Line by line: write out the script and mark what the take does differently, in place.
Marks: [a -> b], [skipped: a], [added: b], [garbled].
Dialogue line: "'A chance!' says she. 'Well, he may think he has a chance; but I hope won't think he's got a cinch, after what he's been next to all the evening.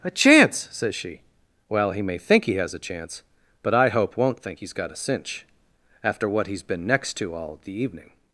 "'A chance!' says she. 'Well, he may think he has a chance; but I hope won't think he's got a cinch, after what he's been next to all the evening.